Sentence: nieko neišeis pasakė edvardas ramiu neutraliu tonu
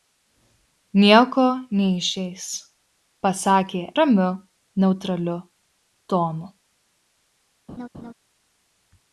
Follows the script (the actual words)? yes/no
no